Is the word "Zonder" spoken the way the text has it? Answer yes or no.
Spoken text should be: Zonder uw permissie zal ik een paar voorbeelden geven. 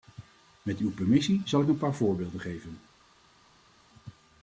no